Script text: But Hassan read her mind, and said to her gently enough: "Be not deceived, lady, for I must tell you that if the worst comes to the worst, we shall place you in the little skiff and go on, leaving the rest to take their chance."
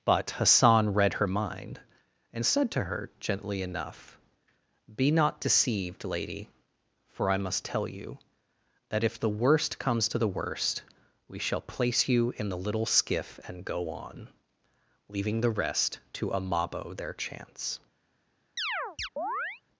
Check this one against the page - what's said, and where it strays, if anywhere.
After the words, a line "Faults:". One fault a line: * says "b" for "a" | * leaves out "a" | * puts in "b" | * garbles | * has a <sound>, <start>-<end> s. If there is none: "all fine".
But Hassan read her mind, and said to her gently enough: "Be not deceived, lady, for I must tell you that if the worst comes to the worst, we shall place you in the little skiff and go on, leaving the rest to amabo their chance."
Faults:
* says "amabo" for "take"
* has a chirp, 18.6-19.6 s